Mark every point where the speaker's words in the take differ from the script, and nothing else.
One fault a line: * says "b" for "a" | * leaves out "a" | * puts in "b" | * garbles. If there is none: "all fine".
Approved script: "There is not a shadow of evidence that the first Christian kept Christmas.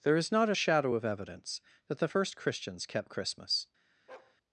* says "Christians" for "Christian"